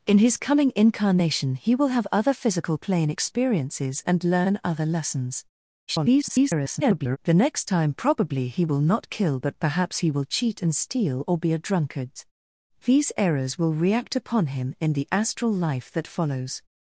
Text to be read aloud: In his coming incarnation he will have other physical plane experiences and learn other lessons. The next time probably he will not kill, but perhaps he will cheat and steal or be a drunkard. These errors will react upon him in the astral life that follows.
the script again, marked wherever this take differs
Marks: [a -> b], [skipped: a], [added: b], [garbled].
In his coming incarnation he will have other physical plane experiences and learn other lessons. [garbled] The next time probably he will not kill, but perhaps he will cheat and steal or be a drunkard. These errors will react upon him in the astral life that follows.